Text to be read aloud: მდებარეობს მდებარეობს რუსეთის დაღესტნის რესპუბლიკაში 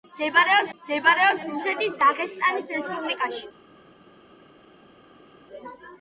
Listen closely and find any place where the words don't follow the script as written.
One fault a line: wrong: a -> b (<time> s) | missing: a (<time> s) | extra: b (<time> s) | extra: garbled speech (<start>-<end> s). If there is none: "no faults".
no faults